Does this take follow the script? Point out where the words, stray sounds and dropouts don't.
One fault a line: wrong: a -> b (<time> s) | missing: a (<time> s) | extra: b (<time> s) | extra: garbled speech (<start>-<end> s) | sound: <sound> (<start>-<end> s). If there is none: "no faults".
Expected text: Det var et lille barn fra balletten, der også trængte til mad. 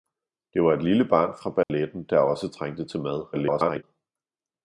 sound: dropout (1.6-1.7 s)
extra: garbled speech (3.3-3.8 s)